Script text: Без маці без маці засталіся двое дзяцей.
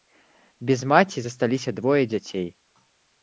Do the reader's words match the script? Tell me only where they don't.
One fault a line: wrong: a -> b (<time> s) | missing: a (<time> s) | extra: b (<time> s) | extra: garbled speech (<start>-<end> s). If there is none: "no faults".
missing: без маці (1.2 s)